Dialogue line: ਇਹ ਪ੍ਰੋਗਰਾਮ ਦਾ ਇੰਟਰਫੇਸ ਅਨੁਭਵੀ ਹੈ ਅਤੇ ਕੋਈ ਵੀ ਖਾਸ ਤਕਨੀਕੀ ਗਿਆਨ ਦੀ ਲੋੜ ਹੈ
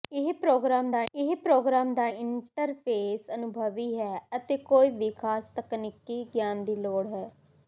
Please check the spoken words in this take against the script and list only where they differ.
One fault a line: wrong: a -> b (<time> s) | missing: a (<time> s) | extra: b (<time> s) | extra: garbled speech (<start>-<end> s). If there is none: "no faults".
extra: ਇਹ ਪ੍ਰੋਗਰਾਮ ਦਾ (1.1 s)